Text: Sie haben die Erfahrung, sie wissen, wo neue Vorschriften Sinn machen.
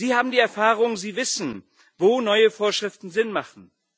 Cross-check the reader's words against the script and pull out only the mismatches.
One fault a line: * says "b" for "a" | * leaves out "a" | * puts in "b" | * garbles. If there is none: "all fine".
all fine